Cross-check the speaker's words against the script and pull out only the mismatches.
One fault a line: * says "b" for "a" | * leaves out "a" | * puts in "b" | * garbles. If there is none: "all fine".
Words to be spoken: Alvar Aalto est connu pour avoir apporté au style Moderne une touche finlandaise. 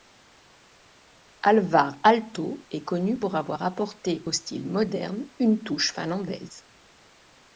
all fine